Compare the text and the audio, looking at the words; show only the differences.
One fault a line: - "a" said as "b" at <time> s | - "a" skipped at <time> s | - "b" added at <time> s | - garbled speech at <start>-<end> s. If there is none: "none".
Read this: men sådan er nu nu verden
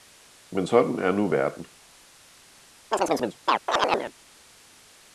- "nu" skipped at 1.3 s